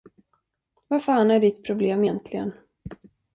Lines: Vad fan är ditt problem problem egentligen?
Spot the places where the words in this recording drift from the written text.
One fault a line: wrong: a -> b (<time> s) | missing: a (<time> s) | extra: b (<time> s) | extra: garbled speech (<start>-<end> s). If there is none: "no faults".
missing: problem (2.0 s)